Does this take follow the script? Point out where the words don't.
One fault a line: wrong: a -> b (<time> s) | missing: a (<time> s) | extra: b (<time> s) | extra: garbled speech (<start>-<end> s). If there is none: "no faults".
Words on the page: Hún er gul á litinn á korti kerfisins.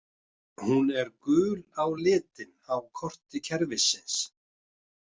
no faults